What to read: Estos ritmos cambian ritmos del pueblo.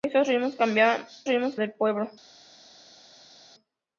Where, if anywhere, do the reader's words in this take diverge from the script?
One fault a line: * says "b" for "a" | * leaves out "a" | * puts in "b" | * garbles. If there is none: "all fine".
all fine